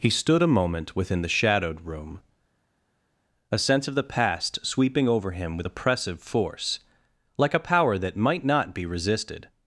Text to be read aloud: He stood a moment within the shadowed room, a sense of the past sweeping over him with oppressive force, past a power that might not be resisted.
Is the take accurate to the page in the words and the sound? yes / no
no